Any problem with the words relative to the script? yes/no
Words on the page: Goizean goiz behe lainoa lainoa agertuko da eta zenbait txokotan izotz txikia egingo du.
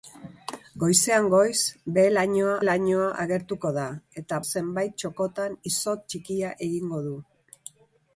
no